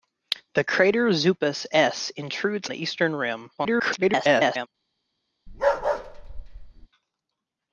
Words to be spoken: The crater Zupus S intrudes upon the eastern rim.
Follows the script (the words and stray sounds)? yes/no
no